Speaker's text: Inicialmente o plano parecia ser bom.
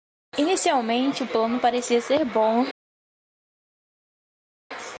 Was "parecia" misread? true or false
false